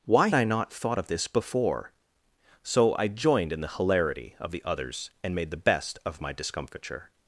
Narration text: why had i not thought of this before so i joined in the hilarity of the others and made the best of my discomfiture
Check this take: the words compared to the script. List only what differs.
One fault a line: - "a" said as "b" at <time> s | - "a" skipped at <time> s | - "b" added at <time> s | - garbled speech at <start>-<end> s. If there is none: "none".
- "had" skipped at 0.3 s